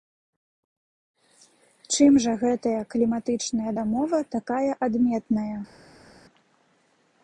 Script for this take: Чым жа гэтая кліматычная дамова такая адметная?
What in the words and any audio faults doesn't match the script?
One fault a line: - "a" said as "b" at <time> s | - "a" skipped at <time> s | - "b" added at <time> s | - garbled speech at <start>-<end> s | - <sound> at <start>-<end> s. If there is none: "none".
none